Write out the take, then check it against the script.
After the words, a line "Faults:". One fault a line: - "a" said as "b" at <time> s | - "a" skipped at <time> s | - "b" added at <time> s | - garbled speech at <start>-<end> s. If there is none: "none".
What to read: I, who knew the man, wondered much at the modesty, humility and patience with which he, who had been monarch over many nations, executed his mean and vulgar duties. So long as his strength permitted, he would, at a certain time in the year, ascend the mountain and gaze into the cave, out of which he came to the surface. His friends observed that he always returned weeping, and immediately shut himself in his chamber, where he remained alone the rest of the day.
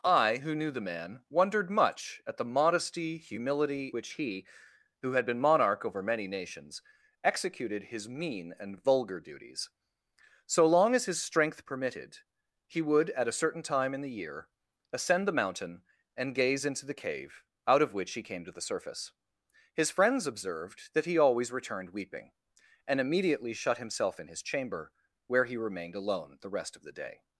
I, who knew the man, wondered much at the modesty, humility which he, who had been monarch over many nations, executed his mean and vulgar duties. So long as his strength permitted, he would, at a certain time in the year, ascend the mountain and gaze into the cave, out of which he came to the surface. His friends observed that he always returned weeping, and immediately shut himself in his chamber, where he remained alone the rest of the day.
Faults:
- "and patience with" skipped at 3.9 s